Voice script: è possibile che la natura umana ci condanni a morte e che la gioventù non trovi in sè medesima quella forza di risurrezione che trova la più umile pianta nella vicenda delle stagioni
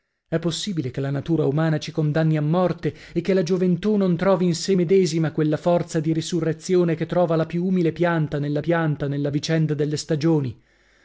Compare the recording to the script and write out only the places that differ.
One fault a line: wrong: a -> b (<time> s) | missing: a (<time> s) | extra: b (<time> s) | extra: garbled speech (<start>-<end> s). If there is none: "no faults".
extra: pianta nella (8.6 s)